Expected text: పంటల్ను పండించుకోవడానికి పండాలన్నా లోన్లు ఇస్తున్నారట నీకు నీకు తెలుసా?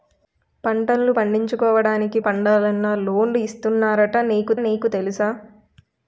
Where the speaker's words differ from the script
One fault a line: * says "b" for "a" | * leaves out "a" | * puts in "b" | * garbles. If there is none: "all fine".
all fine